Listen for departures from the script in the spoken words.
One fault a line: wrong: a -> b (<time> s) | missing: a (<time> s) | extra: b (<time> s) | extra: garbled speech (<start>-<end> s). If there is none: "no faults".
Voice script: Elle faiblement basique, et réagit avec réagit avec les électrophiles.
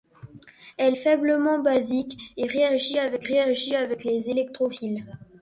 no faults